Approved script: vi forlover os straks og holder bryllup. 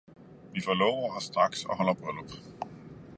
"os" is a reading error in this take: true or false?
false